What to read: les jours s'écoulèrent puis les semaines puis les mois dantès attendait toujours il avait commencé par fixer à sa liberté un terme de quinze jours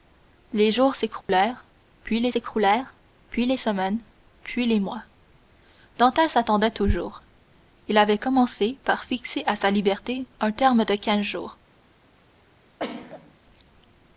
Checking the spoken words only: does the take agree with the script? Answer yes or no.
no